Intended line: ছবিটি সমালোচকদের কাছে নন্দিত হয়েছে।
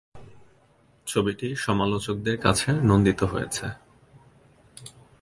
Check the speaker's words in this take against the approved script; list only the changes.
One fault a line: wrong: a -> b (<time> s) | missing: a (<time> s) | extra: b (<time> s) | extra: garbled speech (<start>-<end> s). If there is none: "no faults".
no faults